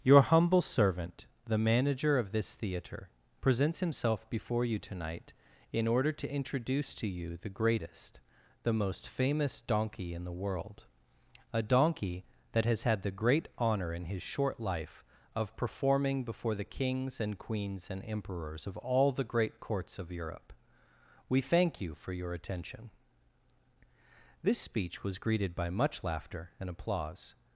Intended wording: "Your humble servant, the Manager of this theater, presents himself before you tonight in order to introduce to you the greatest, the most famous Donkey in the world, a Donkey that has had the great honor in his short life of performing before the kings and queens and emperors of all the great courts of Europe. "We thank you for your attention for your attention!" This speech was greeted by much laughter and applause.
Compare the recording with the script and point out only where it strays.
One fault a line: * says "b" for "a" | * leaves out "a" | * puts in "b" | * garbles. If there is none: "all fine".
* leaves out "for your attention"